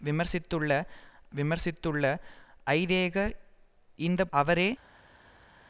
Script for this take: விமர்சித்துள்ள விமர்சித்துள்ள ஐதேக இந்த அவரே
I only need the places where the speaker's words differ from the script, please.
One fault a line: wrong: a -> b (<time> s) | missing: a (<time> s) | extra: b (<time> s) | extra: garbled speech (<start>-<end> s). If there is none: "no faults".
no faults